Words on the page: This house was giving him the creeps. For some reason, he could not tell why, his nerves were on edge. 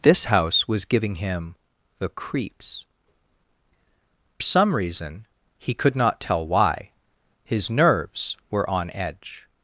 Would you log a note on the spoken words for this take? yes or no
yes